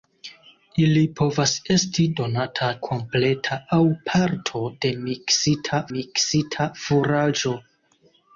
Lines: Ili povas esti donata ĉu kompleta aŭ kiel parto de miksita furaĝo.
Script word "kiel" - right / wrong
wrong